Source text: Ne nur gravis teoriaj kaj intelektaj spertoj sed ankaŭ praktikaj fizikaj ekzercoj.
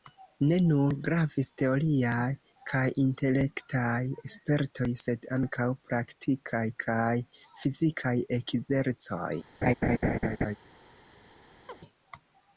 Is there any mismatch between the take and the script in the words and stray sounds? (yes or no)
yes